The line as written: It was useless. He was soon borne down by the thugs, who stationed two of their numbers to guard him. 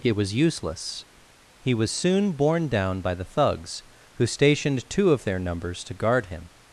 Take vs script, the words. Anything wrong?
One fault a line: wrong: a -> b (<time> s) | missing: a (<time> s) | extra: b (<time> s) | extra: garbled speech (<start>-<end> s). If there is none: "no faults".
no faults